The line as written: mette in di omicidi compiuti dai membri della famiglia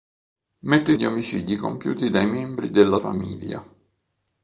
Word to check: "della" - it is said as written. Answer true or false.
true